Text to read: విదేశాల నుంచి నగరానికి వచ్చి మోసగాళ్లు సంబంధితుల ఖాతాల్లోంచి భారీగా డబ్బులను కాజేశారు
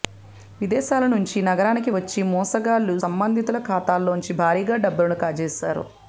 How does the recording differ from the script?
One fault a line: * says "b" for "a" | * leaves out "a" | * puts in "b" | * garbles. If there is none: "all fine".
all fine